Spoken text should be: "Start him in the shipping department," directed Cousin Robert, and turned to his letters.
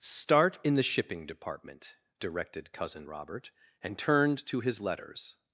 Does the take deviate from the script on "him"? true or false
true